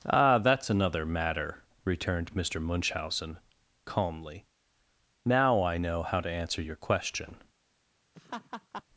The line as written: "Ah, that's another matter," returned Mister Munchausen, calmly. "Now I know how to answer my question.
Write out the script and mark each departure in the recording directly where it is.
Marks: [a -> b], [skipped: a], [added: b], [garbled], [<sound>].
"Ah, that's another matter," returned Mister Munchausen, calmly. "Now I know how to answer [my -> your] question. [laugh]